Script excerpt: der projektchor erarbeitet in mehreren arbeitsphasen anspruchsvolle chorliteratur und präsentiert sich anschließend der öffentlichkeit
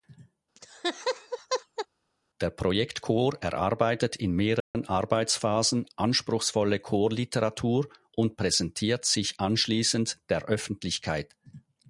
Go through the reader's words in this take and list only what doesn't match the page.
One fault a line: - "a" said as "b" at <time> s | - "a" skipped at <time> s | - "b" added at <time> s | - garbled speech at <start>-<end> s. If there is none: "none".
none